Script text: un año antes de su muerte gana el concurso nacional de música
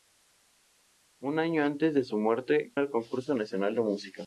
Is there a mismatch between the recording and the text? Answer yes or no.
yes